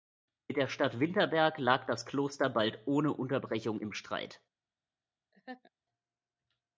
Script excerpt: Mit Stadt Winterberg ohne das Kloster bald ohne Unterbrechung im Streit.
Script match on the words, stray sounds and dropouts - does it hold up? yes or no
no